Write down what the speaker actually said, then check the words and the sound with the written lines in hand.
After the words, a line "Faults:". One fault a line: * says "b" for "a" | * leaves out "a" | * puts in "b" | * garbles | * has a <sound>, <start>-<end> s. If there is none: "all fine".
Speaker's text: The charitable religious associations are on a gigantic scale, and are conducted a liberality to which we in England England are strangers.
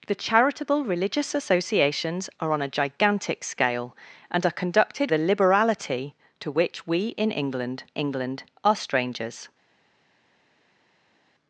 The charitable religious associations are on a gigantic scale, and are conducted a liberality to which we in England England are strangers.
Faults:
all fine